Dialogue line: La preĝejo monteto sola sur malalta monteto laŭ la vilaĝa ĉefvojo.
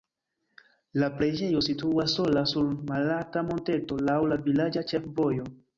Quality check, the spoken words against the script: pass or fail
fail